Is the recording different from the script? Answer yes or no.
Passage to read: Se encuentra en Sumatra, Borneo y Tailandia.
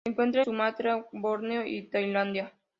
yes